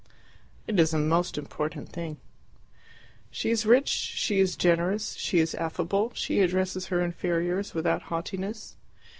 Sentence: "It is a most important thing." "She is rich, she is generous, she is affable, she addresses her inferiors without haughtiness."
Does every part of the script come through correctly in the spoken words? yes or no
yes